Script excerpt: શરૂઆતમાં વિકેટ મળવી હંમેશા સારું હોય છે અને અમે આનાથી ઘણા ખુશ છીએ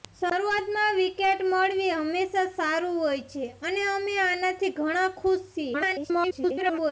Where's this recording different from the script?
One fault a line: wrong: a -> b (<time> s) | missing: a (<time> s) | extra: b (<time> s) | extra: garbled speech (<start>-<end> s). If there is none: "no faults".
extra: garbled speech (5.7-6.9 s)